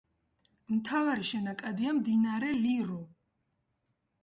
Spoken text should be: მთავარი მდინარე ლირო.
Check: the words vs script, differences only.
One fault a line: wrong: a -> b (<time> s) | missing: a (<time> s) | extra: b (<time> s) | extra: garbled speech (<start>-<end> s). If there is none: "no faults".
extra: შენაკადია (1.3 s)